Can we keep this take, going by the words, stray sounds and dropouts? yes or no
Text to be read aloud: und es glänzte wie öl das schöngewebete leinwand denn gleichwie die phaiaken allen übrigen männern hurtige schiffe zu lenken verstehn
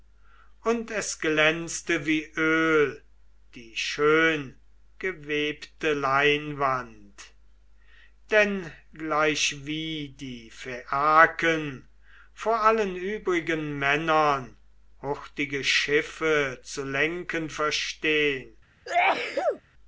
no